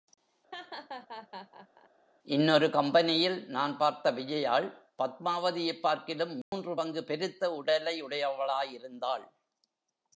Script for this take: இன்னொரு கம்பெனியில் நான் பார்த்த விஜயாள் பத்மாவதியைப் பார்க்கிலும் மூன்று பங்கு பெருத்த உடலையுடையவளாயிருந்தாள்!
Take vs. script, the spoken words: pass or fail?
pass